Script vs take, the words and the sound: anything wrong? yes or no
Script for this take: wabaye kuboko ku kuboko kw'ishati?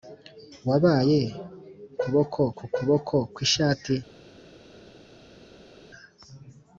no